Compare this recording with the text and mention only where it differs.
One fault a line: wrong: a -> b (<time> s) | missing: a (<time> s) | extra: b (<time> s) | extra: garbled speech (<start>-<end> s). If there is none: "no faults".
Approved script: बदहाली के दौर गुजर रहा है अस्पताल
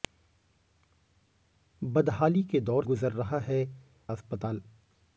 no faults